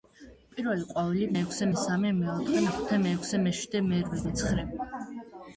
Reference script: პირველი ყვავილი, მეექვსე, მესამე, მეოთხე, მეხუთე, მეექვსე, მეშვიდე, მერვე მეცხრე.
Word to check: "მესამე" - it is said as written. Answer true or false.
true